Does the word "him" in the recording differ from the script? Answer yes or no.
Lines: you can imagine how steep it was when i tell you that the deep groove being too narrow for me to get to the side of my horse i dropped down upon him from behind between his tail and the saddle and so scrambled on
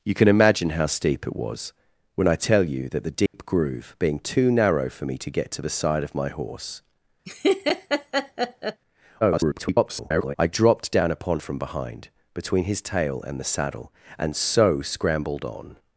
yes